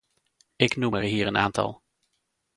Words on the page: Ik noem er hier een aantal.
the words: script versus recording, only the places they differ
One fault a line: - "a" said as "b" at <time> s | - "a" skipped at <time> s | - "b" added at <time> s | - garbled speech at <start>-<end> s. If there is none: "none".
none